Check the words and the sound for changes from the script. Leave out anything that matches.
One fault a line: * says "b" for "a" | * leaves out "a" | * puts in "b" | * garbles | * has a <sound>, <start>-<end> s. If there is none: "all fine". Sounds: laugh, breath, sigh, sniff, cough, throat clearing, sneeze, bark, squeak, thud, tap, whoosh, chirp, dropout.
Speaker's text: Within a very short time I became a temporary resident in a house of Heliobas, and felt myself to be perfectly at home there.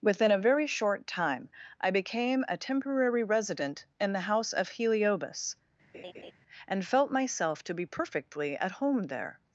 * says "the" for "a"
* has a laugh, 5.9-6.3 s